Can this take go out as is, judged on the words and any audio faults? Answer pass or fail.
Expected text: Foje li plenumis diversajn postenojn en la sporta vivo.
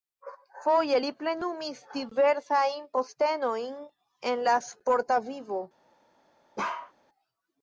fail